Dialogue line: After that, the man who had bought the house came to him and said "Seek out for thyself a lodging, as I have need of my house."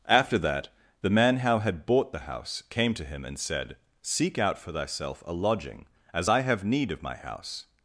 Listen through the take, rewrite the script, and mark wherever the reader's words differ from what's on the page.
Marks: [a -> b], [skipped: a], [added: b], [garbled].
After that, the man [who -> how] had bought the house came to him and said "Seek out for thyself a lodging, as I have need of my house."